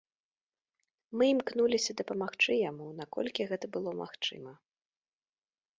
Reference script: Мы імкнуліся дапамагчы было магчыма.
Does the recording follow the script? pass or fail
fail